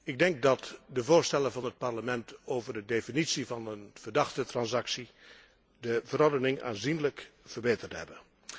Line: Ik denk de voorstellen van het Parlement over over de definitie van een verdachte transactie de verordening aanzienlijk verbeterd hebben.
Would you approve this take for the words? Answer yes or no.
no